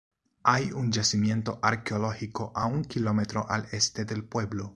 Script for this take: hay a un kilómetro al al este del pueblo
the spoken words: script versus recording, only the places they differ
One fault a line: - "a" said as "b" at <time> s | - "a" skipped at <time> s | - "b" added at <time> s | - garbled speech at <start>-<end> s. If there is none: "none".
- "un yacimiento arqueológico" added at 0.7 s
- "al" skipped at 3.7 s